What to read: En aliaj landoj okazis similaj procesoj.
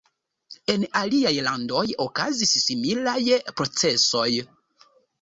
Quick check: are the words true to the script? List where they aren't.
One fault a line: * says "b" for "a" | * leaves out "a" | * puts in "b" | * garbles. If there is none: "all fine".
all fine